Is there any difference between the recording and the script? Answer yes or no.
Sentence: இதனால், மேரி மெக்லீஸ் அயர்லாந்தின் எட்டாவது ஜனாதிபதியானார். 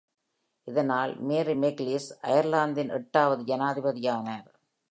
no